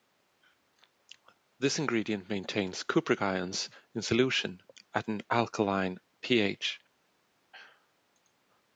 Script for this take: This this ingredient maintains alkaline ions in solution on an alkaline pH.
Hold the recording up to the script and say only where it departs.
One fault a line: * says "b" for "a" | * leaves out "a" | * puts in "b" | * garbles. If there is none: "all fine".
* leaves out "this"
* says "cupric" for "alkaline"
* says "at" for "on"